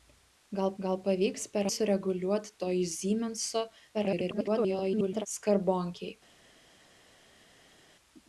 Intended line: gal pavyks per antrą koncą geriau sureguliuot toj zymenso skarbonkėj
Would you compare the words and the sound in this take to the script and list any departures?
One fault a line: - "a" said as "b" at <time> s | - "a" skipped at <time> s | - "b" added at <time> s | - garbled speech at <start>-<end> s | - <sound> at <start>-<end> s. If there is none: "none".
- "gal" added at 0.9 s
- "antrą koncą geriau" skipped at 1.7 s
- garbled speech at 3.9-5.3 s